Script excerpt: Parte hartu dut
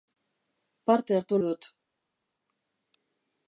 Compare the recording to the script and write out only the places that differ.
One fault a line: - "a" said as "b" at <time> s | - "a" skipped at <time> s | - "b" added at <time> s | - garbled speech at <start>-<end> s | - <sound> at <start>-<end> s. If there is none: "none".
none